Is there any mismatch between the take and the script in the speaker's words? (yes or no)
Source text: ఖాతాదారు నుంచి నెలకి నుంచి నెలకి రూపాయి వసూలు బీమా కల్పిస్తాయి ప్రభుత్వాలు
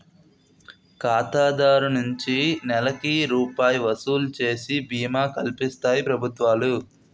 yes